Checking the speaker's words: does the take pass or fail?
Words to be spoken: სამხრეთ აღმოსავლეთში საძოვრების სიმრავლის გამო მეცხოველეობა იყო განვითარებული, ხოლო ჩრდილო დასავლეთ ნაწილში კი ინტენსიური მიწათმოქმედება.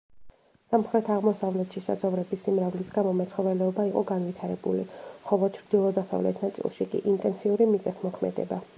pass